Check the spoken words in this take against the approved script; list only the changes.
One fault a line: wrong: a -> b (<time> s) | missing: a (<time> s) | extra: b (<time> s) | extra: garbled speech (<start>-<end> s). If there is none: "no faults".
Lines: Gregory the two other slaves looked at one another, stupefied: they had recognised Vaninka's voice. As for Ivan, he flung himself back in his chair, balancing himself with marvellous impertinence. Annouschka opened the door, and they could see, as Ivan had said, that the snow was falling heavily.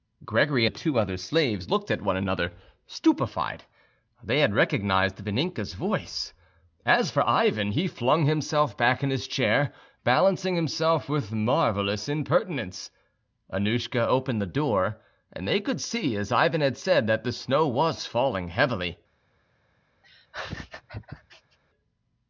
no faults